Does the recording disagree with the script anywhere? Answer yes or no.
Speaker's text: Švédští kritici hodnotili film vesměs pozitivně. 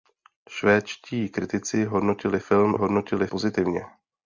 yes